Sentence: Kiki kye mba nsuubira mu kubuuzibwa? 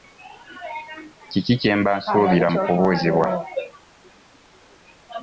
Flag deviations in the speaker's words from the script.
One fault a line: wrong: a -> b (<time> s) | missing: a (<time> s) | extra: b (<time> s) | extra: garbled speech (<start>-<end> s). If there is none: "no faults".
no faults